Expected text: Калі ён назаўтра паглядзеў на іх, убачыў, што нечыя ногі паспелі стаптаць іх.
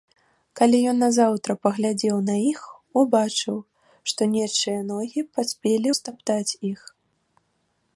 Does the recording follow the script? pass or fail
pass